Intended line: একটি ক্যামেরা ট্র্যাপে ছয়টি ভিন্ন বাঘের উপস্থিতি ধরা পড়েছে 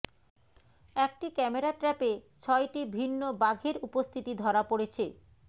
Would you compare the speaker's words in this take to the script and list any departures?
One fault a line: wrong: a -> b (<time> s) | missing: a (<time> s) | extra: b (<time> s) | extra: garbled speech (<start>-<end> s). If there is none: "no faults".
no faults